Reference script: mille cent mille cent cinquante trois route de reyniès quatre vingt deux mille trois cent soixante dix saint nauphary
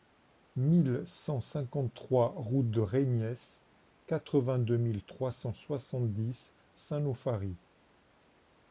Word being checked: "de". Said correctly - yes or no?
yes